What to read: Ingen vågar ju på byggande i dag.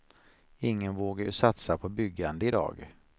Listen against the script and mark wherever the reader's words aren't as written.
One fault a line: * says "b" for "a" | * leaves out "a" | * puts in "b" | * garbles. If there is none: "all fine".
* puts in "satsa"